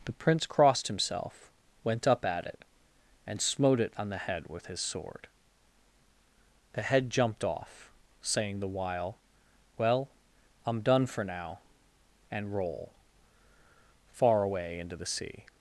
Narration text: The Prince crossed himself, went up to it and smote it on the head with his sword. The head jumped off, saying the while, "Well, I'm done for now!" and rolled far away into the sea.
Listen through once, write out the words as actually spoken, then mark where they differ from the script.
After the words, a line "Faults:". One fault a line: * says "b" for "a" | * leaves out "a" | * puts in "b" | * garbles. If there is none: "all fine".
The Prince crossed himself, went up at it and smote it on the head with his sword. The head jumped off, saying the while, "Well, I'm done for now!" and roll far away into the sea.
Faults:
* says "at" for "to"
* says "roll" for "rolled"